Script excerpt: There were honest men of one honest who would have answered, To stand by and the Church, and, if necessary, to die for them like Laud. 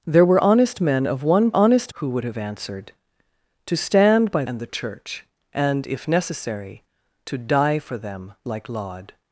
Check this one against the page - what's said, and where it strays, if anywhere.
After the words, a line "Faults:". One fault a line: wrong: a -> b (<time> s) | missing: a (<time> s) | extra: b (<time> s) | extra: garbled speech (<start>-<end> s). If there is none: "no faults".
There were honest men of one honest who would have answered, To stand by and the Church, and, if necessary, to die for them like Laud.
Faults:
no faults